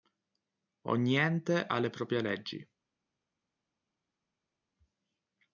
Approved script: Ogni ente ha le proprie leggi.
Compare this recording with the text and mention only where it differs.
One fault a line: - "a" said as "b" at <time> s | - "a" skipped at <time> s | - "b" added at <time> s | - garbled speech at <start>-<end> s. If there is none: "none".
none